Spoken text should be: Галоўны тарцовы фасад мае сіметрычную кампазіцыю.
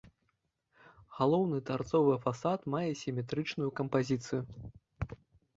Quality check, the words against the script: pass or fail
pass